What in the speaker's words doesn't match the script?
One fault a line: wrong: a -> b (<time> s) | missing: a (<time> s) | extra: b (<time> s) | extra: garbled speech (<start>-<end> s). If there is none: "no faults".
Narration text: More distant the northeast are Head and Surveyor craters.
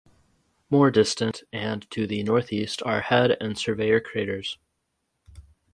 extra: and to (1.5 s)